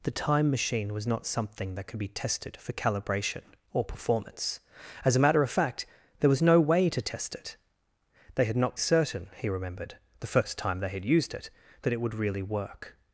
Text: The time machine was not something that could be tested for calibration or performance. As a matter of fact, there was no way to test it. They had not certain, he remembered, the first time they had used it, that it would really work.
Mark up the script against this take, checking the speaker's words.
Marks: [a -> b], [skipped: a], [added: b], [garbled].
The time machine was not something that could be tested for calibration or performance. As a matter of fact, there was no way to test it. They had not certain, he remembered, the first time they had used it, that it would really work.